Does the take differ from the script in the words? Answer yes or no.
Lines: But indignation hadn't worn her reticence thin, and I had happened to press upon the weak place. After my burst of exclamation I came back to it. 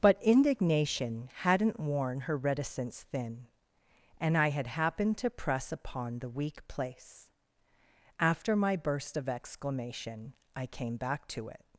no